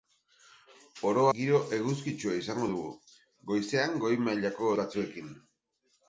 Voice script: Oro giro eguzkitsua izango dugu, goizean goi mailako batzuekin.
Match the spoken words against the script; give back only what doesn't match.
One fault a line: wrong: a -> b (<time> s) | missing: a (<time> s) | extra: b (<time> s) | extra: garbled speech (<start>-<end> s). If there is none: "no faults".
no faults